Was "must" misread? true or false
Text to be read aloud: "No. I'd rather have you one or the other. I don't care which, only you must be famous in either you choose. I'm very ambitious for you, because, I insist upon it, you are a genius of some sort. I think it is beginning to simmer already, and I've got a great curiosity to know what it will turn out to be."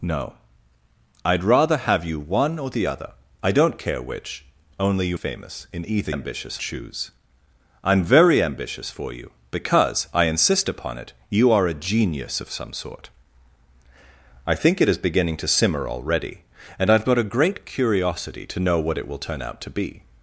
true